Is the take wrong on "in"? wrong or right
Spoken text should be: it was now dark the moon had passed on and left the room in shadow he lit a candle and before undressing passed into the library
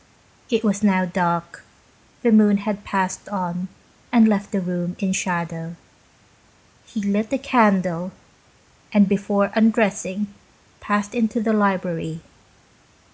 right